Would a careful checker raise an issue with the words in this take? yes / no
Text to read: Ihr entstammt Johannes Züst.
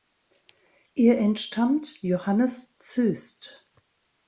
no